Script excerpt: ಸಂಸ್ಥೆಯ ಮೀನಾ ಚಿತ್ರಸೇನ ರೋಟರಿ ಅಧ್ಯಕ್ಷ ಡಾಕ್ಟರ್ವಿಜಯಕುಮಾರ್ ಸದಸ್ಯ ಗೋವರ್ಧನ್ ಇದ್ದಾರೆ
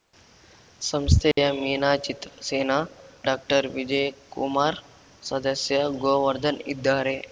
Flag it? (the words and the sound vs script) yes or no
yes